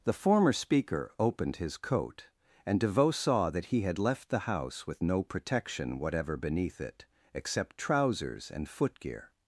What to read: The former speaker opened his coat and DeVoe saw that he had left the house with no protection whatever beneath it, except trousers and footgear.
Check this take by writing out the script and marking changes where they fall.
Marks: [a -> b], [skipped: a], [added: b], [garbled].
The former speaker opened his coat and DeVoe saw that he had left the house with no protection whatever beneath it, except trousers and footgear.